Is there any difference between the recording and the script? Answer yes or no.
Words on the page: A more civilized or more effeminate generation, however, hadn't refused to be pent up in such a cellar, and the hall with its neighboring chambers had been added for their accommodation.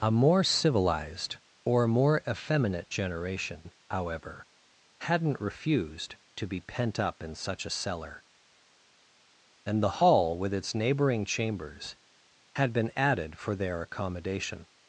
no